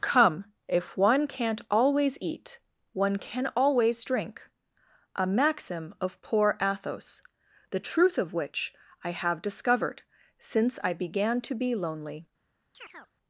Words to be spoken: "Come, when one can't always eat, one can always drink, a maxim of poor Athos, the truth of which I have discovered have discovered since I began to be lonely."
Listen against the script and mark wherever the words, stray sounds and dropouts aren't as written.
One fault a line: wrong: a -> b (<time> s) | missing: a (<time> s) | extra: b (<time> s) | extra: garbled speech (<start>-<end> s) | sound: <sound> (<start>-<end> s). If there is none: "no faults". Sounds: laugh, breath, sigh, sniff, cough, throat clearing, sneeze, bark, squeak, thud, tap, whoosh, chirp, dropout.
wrong: when -> if (0.7 s)
missing: have discovered (10.0 s)
sound: chirp (12.7-13.1 s)